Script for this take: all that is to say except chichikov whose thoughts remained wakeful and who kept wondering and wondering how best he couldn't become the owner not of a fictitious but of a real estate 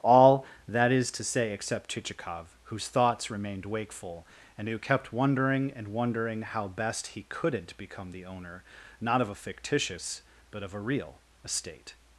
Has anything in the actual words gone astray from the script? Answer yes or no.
no